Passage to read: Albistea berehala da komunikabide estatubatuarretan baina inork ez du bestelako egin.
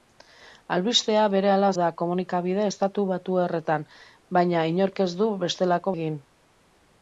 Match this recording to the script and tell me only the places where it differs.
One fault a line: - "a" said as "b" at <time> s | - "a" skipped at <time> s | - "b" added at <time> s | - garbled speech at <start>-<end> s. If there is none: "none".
none